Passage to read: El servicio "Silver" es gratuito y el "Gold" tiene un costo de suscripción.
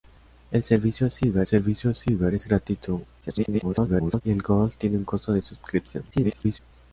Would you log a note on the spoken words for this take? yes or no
yes